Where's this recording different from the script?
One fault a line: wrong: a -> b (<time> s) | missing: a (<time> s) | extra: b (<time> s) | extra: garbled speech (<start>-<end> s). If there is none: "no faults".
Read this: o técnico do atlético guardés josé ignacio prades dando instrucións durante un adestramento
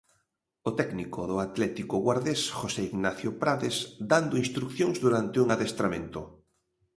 no faults